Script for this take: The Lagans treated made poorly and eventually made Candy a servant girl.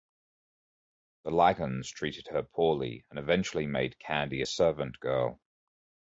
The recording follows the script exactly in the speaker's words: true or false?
false